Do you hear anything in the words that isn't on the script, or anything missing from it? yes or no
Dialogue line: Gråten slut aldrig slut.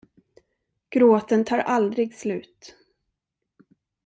yes